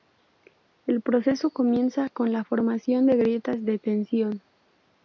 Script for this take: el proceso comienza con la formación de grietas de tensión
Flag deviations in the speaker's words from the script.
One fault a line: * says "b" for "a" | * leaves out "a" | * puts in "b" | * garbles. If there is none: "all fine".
all fine